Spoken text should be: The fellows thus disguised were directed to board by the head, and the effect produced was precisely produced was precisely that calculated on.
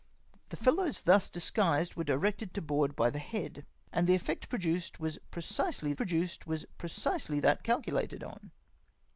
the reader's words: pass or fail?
pass